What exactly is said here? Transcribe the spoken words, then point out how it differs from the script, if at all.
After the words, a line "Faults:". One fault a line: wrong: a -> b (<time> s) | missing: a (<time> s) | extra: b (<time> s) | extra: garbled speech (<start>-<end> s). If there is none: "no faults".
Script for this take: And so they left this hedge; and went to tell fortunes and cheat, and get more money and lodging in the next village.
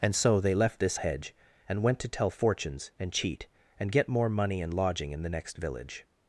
And so they left this hedge; and went to tell fortunes and cheat, and get more money and lodging in the next village.
Faults:
no faults